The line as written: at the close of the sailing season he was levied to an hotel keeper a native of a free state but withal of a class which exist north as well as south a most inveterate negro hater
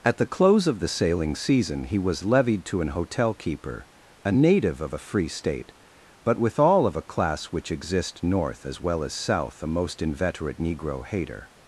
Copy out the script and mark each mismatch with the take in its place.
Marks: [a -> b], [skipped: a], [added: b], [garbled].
at the close of the sailing season he was levied to an hotel keeper a native of a free state but withal of a class which exist north as well as south a most inveterate negro hater